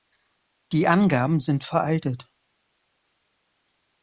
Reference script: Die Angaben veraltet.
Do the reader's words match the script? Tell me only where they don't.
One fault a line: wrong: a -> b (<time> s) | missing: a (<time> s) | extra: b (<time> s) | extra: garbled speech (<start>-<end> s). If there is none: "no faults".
extra: sind (1.4 s)